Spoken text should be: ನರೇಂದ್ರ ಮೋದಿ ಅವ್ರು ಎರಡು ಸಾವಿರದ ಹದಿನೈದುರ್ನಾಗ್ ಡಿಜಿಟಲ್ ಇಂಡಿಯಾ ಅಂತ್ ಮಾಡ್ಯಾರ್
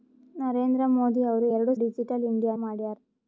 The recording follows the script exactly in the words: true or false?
false